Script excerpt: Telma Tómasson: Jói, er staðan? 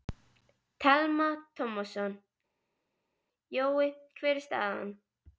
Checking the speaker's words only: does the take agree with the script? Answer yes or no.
no